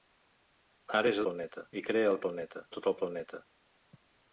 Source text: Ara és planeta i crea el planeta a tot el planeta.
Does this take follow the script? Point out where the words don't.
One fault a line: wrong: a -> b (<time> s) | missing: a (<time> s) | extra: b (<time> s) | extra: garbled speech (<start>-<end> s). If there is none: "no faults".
no faults